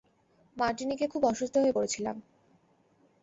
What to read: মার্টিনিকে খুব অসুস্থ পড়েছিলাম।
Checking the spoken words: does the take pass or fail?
fail